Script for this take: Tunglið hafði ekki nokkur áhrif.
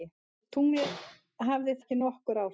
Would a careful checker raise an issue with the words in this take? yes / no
no